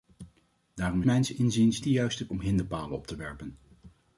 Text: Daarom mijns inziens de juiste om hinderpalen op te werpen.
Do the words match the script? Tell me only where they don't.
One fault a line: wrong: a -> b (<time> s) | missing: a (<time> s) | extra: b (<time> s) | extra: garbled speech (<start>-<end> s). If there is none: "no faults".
no faults